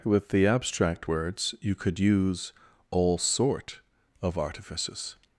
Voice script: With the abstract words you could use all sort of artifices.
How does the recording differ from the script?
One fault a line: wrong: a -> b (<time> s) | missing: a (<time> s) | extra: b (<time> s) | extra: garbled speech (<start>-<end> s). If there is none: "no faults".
no faults